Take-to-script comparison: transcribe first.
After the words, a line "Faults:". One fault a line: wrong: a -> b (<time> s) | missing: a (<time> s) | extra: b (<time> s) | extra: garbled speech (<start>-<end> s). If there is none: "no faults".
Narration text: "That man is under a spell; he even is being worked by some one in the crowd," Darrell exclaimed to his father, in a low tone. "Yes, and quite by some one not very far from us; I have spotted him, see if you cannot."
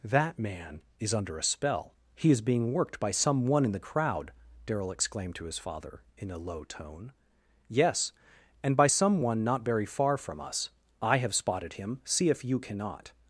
"That man is under a spell; he is being worked by some one in the crowd," Darrell exclaimed to his father, in a low tone. "Yes, and by some one not very far from us; I have spotted him, see if you cannot."
Faults:
missing: even (2.3 s)
missing: quite (8.8 s)